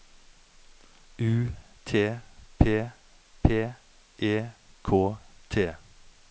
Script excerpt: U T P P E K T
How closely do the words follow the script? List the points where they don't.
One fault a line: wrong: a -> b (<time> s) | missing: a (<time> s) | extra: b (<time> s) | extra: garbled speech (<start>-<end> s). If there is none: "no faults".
no faults